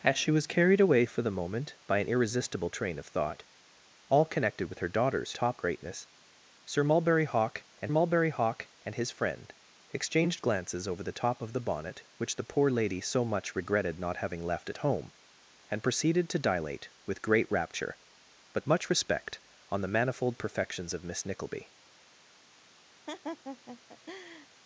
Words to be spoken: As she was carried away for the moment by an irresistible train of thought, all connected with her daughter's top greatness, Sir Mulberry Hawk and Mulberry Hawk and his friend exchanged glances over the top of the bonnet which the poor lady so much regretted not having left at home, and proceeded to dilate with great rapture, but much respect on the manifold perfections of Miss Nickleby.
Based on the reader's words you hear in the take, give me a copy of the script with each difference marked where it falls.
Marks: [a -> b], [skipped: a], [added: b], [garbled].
As she was carried away for the moment by an irresistible train of thought, all connected with her daughter's top greatness, Sir Mulberry Hawk and Mulberry Hawk and his friend exchanged glances over the top of the bonnet which the poor lady so much regretted not having left at home, and proceeded to dilate with great rapture, but much respect on the manifold perfections of Miss Nickleby.